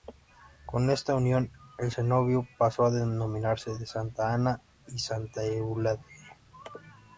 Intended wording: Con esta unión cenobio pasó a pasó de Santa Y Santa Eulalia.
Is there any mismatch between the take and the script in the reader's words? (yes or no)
yes